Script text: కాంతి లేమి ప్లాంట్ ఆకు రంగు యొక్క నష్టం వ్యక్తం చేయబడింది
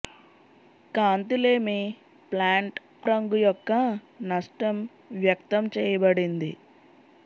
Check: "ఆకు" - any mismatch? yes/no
yes